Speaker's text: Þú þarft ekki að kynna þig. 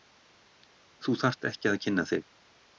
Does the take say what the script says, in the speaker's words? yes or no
yes